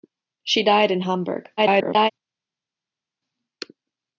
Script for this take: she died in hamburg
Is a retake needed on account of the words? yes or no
yes